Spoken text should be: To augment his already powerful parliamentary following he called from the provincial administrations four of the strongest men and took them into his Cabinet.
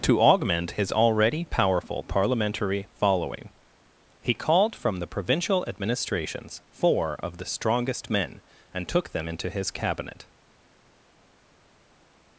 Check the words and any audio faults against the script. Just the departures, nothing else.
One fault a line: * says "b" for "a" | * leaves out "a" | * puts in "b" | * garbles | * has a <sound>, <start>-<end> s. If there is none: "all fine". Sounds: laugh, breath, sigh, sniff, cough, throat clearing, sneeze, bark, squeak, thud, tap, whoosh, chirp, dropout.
all fine